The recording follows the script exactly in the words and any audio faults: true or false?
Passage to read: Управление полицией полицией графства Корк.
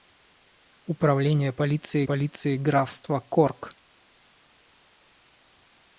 true